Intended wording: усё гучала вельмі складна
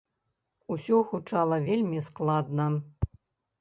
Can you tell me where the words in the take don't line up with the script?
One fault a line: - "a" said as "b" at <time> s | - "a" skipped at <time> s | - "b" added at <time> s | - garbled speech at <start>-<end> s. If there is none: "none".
none